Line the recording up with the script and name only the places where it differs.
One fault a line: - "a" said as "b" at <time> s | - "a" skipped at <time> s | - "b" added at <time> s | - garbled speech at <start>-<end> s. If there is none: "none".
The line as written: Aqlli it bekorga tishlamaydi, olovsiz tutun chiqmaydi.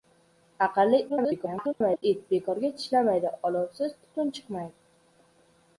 - garbled speech at 1.1-2.0 s